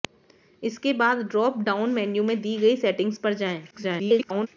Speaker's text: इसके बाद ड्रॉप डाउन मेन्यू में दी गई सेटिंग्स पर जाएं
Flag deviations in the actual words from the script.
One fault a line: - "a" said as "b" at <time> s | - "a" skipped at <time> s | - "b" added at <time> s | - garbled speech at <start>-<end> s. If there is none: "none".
- garbled speech at 3.7-4.5 s